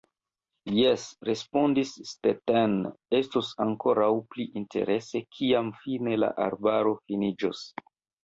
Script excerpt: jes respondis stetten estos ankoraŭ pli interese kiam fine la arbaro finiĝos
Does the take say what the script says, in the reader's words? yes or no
yes